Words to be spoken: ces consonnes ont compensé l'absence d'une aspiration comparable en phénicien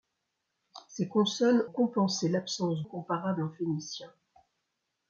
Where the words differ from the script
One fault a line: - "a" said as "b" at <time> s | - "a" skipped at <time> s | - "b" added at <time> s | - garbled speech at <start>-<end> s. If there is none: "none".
- "ont" skipped at 1.6 s
- "d'une aspiration" skipped at 2.8 s